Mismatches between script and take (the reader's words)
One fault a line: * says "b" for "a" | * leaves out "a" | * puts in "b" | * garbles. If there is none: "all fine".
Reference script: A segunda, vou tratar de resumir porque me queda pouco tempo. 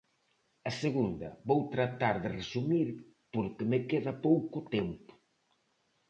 all fine